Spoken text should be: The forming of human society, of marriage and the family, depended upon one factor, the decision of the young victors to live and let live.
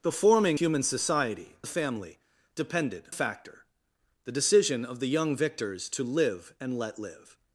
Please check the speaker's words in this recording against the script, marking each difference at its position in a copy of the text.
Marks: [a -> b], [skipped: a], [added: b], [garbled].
The forming [skipped: of] human society, [skipped: of marriage and] the family, depended [skipped: upon one] factor, the decision of the young victors to live and let live.